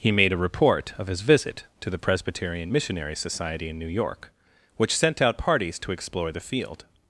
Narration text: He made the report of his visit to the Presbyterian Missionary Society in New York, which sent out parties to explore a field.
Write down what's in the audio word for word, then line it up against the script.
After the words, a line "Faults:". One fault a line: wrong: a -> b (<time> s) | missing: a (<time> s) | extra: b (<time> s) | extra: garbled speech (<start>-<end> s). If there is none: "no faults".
He made a report of his visit to the Presbyterian Missionary Society in New York, which sent out parties to explore the field.
Faults:
wrong: the -> a (0.3 s)
wrong: a -> the (6.3 s)